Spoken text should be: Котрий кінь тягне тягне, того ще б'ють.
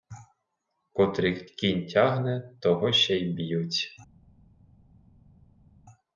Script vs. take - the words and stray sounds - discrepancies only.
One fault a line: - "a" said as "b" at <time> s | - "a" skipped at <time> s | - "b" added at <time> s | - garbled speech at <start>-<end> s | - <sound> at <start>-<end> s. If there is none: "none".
- "тягне" skipped at 2.5 s
- "й" added at 3.2 s